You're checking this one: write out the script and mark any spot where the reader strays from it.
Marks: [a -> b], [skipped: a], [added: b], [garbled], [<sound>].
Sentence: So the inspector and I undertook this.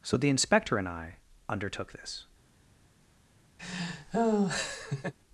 So the inspector and I undertook this. [laugh]